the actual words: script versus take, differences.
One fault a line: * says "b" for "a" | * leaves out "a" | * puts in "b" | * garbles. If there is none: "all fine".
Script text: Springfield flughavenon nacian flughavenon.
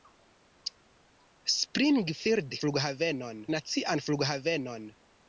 all fine